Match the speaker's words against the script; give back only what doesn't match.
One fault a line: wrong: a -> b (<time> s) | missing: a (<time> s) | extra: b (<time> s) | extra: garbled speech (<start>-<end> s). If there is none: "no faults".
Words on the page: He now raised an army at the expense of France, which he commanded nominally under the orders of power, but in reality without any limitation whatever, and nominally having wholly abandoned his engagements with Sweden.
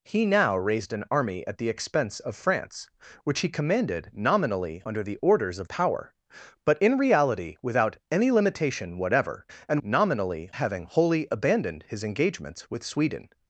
no faults